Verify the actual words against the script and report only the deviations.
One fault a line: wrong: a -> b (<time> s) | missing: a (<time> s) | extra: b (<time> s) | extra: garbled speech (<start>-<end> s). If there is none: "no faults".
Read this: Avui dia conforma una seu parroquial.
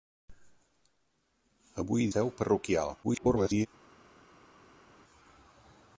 missing: dia conforma una (2.1 s)
extra: garbled speech (3.0-3.7 s)